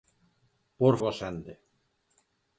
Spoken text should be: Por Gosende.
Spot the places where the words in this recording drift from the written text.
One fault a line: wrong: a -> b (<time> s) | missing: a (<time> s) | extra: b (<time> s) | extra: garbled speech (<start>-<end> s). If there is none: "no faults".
no faults